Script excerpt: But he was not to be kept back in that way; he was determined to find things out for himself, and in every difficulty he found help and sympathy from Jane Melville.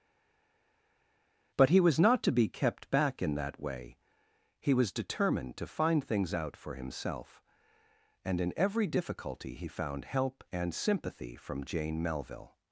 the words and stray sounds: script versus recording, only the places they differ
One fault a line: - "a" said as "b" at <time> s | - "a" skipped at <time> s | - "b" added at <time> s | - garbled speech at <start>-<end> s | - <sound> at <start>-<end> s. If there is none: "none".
none